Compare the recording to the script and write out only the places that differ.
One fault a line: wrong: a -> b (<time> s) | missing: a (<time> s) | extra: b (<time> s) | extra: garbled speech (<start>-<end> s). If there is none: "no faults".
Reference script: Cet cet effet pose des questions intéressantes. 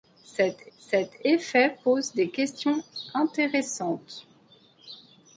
no faults